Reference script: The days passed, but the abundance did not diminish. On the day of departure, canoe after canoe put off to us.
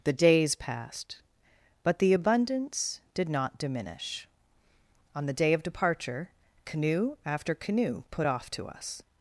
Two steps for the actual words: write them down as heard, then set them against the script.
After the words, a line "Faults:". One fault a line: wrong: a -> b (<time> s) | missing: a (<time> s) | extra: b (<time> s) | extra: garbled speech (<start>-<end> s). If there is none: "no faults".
The days passed, but the abundance did not diminish. On the day of departure, canoe after canoe put off to us.
Faults:
no faults